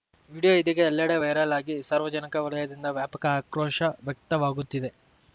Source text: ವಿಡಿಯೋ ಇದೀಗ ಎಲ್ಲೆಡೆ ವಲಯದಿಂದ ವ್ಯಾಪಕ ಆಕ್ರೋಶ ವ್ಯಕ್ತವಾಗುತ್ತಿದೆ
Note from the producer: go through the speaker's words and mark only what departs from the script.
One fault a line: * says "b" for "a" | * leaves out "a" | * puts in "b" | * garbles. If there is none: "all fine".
* puts in "ವೈರಲ್ ಆಗಿ ಸಾರ್ವಜನಿಕ"